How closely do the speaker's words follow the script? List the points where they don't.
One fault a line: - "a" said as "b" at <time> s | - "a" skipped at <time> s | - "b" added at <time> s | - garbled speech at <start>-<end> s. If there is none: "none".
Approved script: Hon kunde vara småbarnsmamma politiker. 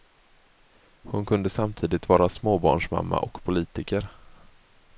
- "samtidigt" added at 1.5 s
- "och" added at 3.2 s